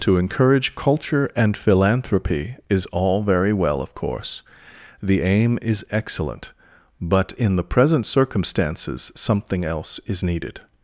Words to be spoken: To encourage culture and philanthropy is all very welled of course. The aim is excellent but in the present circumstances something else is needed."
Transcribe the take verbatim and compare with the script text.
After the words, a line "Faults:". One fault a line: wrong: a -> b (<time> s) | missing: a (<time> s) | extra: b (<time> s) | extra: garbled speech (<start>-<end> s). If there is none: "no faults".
To encourage culture and philanthropy is all very well of course. The aim is excellent but in the present circumstances something else is needed."
Faults:
wrong: welled -> well (3.5 s)